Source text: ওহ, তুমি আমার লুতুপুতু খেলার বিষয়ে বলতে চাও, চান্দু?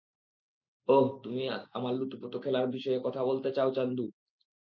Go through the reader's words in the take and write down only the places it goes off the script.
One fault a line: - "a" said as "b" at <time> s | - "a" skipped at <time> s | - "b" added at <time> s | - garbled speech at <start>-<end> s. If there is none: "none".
- "কথা" added at 3.0 s